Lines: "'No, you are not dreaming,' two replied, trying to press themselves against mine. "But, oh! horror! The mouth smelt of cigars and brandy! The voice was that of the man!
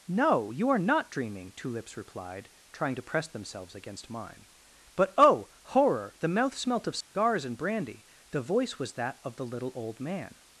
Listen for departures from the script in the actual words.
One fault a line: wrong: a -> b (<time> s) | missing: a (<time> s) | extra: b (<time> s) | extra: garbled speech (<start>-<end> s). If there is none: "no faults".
extra: lips (1.7 s)
extra: little old (9.4 s)